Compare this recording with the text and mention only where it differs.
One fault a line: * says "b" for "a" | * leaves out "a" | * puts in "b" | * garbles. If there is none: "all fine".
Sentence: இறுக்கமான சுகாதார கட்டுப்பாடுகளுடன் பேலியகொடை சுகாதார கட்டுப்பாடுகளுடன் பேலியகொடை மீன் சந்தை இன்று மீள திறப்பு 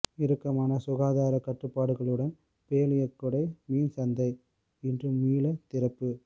* leaves out "சுகாதார கட்டுப்பாடுகளுடன் பேலியகொடை"